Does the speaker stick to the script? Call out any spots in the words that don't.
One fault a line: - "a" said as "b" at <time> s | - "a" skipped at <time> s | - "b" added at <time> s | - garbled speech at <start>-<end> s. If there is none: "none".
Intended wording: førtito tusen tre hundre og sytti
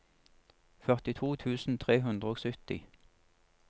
none